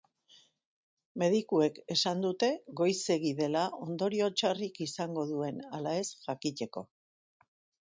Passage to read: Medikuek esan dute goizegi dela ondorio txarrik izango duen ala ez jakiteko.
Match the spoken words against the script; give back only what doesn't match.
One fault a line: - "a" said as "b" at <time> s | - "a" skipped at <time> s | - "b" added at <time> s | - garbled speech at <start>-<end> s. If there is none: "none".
none